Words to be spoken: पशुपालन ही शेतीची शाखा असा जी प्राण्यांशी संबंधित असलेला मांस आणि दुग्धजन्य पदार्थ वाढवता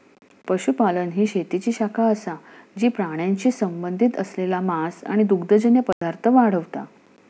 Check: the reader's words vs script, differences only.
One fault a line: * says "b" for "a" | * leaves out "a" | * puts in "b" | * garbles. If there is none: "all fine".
all fine